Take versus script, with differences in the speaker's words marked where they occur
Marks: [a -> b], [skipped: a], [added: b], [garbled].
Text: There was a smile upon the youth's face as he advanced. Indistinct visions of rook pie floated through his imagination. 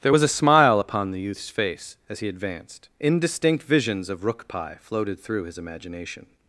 There was a smile upon the youth's face as he advanced. Indistinct visions of rook pie floated through his imagination.